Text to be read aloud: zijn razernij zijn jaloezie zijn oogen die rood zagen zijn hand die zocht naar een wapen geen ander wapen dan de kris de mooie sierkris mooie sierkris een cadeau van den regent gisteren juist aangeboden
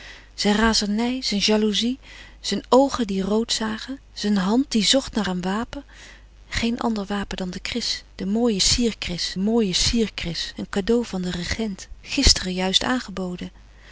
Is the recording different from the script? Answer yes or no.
no